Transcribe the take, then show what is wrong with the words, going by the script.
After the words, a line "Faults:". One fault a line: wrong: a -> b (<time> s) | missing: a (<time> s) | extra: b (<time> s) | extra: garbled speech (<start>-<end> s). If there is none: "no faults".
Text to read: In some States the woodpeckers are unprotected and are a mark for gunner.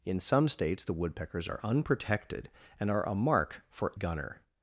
In some States the woodpeckers are unprotected and are a mark for gunner.
Faults:
no faults